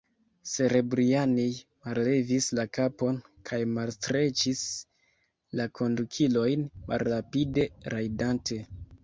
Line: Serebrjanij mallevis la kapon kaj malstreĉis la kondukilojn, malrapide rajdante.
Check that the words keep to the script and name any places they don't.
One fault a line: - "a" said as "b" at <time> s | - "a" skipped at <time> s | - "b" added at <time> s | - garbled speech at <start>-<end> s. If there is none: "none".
none